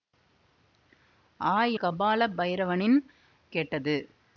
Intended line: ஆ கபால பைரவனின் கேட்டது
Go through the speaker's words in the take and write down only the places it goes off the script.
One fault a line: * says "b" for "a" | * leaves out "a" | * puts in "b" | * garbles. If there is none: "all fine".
all fine